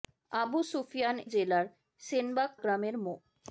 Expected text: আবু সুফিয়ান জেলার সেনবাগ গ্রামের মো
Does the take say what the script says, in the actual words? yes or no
yes